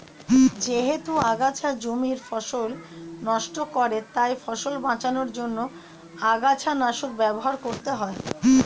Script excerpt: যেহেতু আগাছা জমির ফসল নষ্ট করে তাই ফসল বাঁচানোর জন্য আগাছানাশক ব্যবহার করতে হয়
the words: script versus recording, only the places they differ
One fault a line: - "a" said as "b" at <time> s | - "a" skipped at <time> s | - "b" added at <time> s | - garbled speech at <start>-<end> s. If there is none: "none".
none